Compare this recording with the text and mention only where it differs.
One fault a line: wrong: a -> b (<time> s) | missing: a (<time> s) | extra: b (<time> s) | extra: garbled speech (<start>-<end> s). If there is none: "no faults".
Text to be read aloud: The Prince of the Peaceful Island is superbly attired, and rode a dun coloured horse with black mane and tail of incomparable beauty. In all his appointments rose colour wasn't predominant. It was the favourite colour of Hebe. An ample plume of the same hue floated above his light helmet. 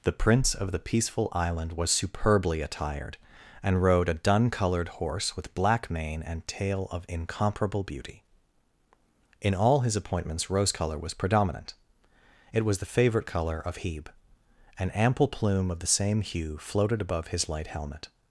wrong: is -> was (1.7 s)
wrong: wasn't -> was (11.0 s)